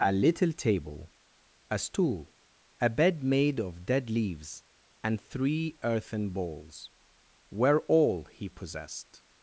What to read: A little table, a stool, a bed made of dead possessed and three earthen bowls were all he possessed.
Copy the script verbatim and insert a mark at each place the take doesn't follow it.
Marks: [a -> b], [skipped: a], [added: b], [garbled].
A little table, a stool, a bed made of dead [possessed -> leaves] and three earthen bowls were all he possessed.